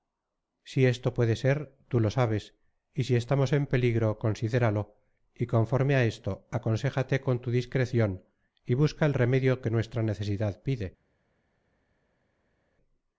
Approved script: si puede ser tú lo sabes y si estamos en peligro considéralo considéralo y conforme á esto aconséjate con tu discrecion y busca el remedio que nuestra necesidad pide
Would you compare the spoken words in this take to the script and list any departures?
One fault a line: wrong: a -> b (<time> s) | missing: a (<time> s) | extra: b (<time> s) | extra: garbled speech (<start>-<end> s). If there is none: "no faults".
extra: esto (0.9 s)
missing: considéralo (4.8 s)